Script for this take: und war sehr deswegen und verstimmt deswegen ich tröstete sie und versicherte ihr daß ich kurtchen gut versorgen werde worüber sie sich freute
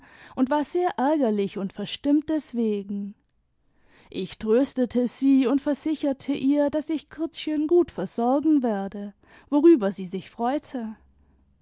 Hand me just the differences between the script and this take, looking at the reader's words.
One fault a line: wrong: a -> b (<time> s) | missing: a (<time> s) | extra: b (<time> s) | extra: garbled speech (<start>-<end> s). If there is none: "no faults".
wrong: deswegen -> ärgerlich (1.0 s)